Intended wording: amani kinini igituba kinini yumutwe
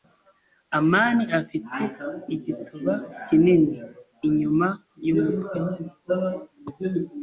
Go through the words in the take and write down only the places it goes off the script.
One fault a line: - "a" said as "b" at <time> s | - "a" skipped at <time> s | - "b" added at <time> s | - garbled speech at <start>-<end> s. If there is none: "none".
- "kinini" said as "afite" at 1.4 s
- "inyuma" added at 4.3 s